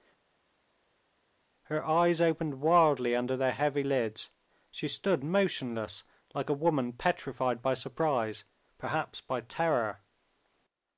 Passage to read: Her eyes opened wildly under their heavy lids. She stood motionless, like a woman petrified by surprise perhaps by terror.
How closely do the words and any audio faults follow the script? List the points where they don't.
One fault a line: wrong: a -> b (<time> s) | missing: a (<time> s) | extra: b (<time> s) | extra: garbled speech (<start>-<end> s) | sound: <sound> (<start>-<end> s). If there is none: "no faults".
no faults